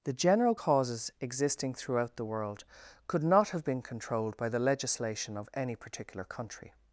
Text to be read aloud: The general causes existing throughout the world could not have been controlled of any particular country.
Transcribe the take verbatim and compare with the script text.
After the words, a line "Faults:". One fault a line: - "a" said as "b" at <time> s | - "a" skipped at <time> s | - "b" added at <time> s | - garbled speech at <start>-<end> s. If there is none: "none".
The general causes existing throughout the world could not have been controlled by the legislation of any particular country.
Faults:
- "by the legislation" added at 4.4 s